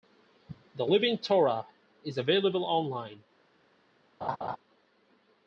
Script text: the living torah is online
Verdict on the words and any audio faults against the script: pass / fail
fail